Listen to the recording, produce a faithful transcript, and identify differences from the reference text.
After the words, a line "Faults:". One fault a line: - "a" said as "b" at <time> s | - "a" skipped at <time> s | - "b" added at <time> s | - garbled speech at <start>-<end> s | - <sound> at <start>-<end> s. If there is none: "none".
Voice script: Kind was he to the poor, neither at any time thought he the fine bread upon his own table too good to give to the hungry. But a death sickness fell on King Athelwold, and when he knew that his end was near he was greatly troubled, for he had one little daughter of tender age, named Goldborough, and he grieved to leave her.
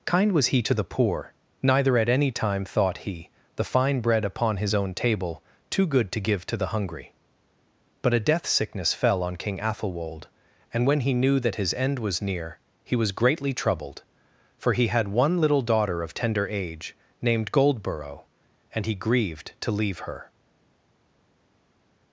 Kind was he to the poor, neither at any time thought he the fine bread upon his own table too good to give to the hungry. But a death sickness fell on King Athelwold, and when he knew that his end was near he was greatly troubled, for he had one little daughter of tender age, named Goldborough, and he grieved to leave her.
Faults:
none